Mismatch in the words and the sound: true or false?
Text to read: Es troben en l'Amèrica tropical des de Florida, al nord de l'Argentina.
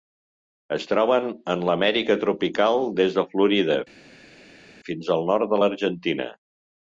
true